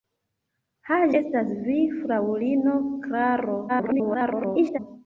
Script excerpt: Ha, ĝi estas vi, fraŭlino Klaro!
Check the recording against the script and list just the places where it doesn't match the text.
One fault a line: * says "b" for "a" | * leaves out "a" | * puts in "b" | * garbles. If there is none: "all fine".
* leaves out "ĝi"
* garbles